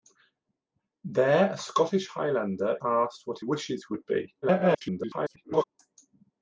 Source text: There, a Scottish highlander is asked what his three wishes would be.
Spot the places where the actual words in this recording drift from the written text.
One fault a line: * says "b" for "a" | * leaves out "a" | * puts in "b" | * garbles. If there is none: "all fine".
* leaves out "is"
* leaves out "his three"
* garbles